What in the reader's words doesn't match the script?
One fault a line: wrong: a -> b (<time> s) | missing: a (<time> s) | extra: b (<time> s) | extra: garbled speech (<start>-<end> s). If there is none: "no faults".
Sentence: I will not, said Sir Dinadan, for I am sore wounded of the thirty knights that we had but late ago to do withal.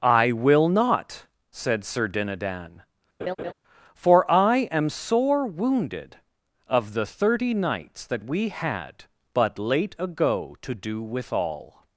no faults